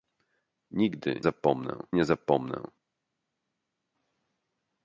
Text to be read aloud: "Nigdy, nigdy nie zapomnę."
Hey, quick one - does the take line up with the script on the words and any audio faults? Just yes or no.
no